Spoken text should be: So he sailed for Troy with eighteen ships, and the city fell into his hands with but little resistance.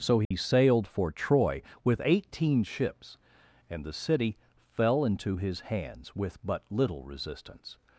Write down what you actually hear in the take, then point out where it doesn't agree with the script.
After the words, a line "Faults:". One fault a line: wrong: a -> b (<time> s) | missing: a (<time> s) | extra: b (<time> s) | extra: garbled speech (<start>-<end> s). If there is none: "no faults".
So he sailed for Troy with eighteen ships, and the city fell into his hands with but little resistance.
Faults:
no faults